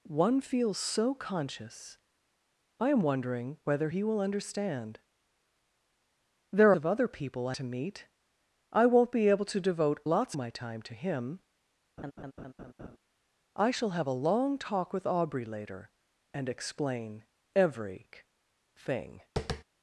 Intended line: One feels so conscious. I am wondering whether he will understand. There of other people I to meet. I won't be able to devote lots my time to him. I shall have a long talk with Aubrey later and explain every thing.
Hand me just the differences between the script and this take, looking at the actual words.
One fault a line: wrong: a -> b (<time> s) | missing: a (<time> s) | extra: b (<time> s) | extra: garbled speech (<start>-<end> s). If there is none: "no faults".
no faults